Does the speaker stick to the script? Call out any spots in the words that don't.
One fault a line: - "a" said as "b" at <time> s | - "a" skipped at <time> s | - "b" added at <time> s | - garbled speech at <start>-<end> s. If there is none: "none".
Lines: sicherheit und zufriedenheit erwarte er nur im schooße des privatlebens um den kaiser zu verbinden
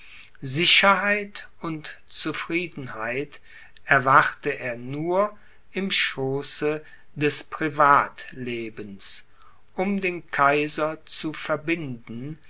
none